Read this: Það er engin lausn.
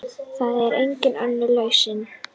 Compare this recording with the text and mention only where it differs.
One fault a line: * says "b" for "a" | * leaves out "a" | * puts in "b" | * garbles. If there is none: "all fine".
* puts in "önnur"